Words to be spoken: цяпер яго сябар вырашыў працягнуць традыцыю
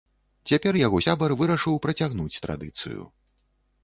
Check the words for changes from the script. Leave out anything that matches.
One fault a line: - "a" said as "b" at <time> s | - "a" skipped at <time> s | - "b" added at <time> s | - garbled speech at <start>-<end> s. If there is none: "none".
none